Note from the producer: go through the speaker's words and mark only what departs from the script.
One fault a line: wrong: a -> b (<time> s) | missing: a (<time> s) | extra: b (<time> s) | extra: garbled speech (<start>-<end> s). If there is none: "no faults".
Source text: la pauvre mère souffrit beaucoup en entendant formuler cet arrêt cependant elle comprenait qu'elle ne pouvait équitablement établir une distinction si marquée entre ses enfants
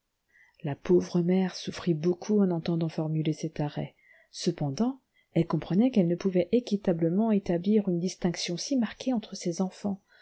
no faults